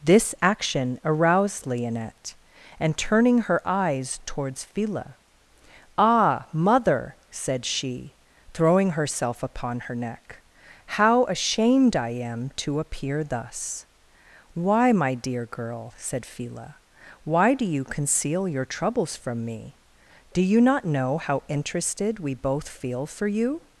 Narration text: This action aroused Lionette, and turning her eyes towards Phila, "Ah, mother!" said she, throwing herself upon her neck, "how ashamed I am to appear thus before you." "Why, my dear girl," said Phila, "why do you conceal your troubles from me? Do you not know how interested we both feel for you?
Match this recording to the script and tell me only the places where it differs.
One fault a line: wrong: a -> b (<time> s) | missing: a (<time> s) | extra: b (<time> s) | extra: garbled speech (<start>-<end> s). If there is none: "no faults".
missing: before you (13.8 s)